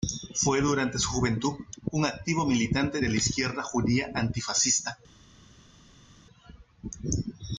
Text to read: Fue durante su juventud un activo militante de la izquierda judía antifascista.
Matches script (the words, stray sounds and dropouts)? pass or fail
pass